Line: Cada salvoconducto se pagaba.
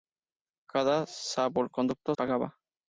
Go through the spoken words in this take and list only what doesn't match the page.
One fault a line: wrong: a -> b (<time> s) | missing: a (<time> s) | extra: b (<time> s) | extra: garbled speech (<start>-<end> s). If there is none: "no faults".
missing: se (2.1 s)